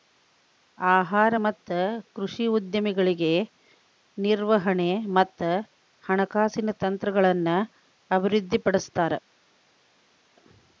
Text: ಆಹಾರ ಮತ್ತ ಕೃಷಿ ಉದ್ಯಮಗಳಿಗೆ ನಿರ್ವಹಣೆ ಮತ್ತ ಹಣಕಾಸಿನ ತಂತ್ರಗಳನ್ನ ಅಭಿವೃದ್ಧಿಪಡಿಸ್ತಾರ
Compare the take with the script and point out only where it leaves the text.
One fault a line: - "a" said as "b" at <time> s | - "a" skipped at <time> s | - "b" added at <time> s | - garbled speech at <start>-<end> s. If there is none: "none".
none